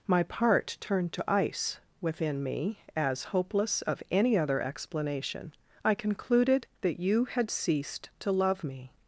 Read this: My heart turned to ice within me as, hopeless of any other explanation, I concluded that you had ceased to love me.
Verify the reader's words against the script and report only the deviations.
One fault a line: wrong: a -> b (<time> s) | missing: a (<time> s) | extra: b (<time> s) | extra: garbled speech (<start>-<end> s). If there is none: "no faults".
wrong: heart -> part (0.2 s)